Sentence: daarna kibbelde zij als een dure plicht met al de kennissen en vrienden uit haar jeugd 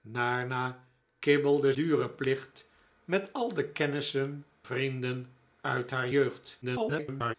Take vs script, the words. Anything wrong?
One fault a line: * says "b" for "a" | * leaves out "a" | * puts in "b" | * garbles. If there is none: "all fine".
* leaves out "zij als een"
* leaves out "en"
* garbles